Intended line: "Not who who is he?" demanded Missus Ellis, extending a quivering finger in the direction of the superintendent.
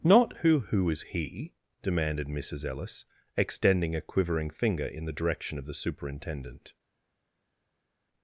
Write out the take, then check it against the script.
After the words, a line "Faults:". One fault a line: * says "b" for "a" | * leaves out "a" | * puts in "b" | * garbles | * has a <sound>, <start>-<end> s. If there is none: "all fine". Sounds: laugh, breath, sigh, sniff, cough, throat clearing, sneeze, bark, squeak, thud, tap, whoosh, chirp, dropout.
"Not who who is he?" demanded Missus Ellis, extending a quivering finger in the direction of the superintendent.
Faults:
all fine